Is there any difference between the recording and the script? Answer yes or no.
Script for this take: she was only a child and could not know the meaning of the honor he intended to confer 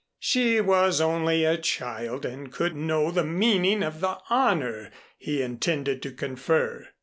yes